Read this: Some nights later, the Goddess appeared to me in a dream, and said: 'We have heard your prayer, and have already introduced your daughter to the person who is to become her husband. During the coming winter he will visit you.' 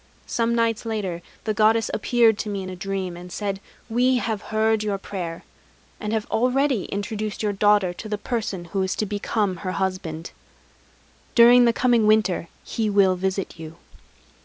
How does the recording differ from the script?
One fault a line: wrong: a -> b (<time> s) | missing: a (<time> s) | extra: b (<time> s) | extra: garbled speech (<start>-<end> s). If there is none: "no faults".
no faults